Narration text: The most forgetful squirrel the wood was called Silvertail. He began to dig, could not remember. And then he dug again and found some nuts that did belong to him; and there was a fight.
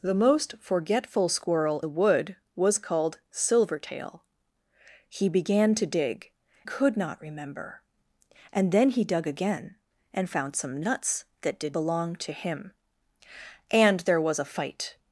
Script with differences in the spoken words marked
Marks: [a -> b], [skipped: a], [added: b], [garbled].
The most forgetful squirrel the wood was called Silvertail. He began to dig, could not remember. And then he dug again and found some nuts that did belong to him; and there was a fight.